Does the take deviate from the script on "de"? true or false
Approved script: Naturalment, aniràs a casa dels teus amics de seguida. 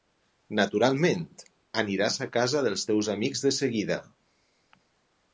false